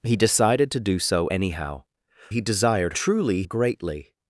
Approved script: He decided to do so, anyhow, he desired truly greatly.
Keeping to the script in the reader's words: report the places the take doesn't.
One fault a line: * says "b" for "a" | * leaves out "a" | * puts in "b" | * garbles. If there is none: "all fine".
all fine